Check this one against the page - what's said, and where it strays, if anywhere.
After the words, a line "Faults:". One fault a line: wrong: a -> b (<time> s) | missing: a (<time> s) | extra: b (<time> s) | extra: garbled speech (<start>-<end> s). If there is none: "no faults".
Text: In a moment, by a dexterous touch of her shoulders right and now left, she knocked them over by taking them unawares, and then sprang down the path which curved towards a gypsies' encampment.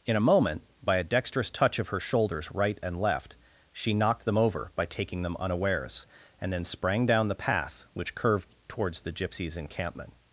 In a moment, by a dexterous touch of her shoulders right and left, she knocked them over by taking them unawares, and then sprang down the path which curved towards the gypsies' encampment.
Faults:
missing: now (3.0 s)
wrong: a -> the (9.0 s)